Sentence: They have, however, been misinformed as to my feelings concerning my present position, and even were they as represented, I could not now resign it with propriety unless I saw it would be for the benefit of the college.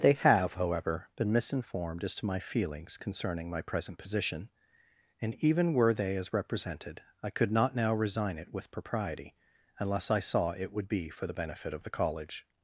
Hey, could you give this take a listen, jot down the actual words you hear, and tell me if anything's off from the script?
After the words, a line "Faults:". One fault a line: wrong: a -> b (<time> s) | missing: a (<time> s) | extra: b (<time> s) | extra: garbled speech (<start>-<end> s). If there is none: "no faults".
They have, however, been misinformed as to my feelings concerning my present position, and even were they as represented, I could not now resign it with propriety unless I saw it would be for the benefit of the college.
Faults:
no faults